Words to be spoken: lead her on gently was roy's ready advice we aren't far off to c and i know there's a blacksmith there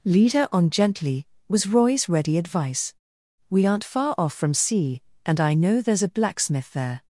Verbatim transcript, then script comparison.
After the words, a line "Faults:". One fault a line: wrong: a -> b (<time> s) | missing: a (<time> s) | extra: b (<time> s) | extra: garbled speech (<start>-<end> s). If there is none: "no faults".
lead her on gently was roy's ready advice we aren't far off from c and i know there's a blacksmith there
Faults:
wrong: to -> from (4.3 s)